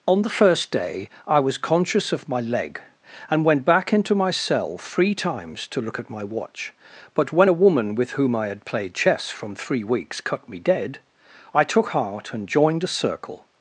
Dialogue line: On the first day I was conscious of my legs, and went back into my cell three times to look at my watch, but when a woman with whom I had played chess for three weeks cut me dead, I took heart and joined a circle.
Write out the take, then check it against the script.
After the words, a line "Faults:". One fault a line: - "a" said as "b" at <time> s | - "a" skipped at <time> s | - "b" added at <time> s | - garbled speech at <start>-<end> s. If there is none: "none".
On the first day I was conscious of my leg, and went back into my cell three times to look at my watch, but when a woman with whom I had played chess from three weeks cut me dead, I took heart and joined a circle.
Faults:
- "legs" said as "leg" at 2.4 s
- "for" said as "from" at 9.3 s